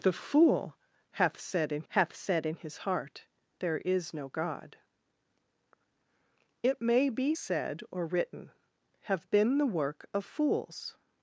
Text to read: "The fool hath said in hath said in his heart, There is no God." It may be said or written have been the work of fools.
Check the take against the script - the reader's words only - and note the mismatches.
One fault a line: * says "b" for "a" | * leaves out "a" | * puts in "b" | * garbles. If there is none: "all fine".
all fine